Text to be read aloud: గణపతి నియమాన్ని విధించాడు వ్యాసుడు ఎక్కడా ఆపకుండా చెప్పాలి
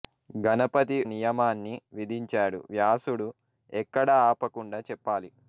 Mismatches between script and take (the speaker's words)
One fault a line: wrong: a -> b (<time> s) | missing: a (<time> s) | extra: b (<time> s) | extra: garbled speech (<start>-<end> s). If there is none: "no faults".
no faults